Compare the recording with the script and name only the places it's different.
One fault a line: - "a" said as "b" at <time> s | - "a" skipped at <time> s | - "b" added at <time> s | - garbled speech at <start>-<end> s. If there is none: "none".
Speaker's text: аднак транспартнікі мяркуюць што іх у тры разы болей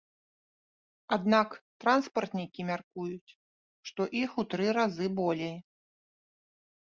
none